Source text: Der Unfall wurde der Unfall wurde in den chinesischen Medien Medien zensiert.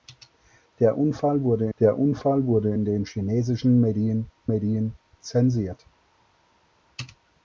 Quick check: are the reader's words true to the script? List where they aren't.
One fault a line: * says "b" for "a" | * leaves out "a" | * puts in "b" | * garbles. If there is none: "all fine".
all fine